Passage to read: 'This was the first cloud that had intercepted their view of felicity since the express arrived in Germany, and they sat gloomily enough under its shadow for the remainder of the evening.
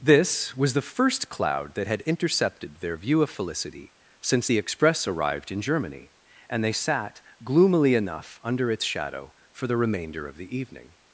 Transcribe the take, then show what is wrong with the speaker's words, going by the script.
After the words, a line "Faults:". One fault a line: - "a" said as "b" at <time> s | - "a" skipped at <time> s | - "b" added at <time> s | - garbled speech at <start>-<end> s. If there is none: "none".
'This was the first cloud that had intercepted their view of felicity since the express arrived in Germany, and they sat gloomily enough under its shadow for the remainder of the evening.
Faults:
none